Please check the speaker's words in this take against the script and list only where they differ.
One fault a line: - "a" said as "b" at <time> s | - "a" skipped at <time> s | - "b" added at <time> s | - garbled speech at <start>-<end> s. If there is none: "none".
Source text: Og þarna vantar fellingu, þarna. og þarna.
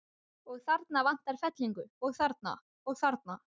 - "og" added at 2.1 s